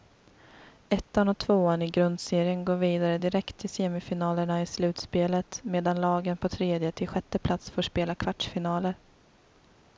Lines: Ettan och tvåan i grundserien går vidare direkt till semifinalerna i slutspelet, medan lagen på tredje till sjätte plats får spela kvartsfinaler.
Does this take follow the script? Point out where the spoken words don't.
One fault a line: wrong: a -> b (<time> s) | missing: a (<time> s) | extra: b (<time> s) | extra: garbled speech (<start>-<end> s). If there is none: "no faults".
no faults